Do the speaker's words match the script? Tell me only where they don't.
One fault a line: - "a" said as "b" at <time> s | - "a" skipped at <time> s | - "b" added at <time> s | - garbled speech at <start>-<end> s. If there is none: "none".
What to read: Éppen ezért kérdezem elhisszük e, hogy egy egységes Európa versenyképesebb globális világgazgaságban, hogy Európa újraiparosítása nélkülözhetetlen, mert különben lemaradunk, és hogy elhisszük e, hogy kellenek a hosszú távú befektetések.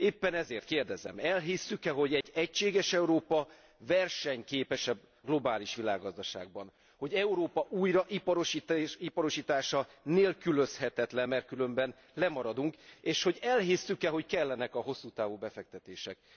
none